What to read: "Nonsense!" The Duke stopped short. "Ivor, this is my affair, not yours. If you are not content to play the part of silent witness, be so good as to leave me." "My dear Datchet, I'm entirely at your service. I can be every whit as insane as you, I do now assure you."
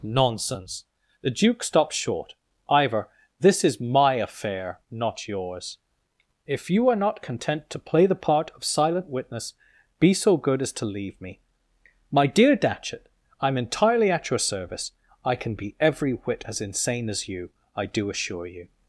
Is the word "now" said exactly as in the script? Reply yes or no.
no